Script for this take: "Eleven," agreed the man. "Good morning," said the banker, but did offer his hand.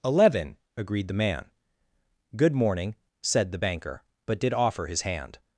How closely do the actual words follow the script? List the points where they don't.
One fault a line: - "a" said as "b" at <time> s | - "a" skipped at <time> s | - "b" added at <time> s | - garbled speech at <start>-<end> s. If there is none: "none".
none